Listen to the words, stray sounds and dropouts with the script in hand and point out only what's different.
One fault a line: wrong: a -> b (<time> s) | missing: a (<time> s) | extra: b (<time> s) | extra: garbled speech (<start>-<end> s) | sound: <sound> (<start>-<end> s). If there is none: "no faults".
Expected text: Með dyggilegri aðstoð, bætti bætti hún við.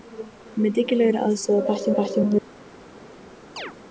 sound: chirp (3.6-3.7 s)